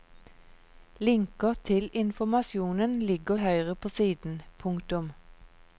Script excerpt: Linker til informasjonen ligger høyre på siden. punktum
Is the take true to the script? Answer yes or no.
yes